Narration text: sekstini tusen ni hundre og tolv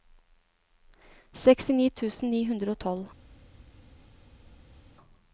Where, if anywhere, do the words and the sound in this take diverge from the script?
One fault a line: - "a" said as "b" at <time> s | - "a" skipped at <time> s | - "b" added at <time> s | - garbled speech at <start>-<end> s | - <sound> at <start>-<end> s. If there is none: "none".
none